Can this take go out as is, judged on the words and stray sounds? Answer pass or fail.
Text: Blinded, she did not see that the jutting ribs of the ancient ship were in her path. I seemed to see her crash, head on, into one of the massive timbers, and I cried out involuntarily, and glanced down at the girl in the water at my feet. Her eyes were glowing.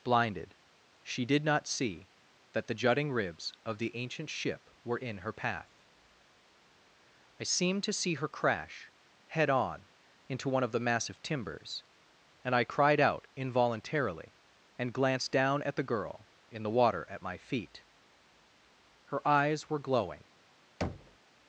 fail